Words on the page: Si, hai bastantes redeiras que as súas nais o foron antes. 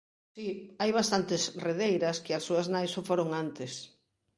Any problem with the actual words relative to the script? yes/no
no